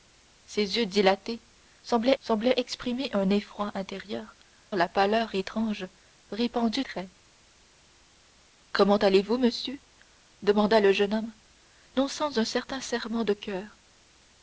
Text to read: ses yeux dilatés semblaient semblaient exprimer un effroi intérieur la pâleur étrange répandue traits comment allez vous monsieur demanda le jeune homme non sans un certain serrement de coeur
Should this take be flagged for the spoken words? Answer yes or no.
no